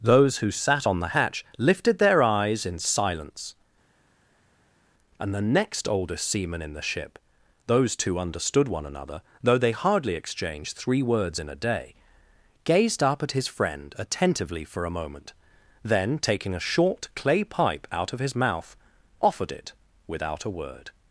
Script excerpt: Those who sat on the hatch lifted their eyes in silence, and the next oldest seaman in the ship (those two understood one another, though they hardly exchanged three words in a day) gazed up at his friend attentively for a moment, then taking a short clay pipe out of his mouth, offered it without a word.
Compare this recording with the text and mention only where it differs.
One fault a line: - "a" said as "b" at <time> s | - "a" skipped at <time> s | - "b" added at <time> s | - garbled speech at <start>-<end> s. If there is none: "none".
none